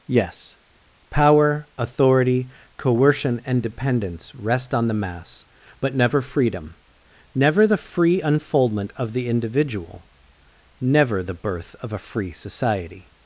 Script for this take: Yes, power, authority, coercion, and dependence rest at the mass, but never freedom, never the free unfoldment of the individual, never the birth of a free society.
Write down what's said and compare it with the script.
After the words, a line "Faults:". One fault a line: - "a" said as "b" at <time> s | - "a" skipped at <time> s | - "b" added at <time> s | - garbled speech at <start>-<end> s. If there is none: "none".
Yes, power, authority, coercion, and dependence rest on the mass, but never freedom, never the free unfoldment of the individual, never the birth of a free society.
Faults:
- "at" said as "on" at 4.7 s